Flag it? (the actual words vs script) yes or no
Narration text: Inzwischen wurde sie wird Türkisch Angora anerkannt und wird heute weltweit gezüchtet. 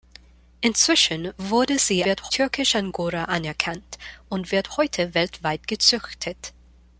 no